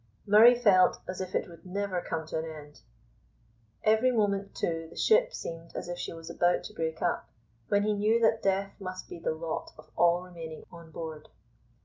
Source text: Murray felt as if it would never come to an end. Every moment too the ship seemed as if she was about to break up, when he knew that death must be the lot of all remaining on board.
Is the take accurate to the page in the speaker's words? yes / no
yes